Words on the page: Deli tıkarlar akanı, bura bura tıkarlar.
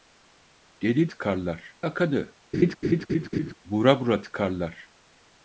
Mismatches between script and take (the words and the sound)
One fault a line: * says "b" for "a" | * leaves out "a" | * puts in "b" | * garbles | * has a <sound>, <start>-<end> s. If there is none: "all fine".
* has a laugh, 2.5-3.5 s